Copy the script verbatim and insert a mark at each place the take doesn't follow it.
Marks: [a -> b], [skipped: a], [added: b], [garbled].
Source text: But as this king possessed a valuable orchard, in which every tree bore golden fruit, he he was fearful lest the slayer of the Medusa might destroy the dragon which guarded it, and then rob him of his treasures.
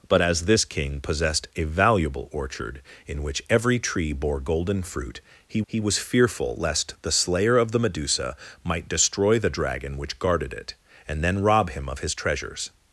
But as this king possessed a valuable orchard, in which every tree bore golden fruit, he he was fearful lest the slayer of the Medusa might destroy the dragon which guarded it, and then rob him of his treasures.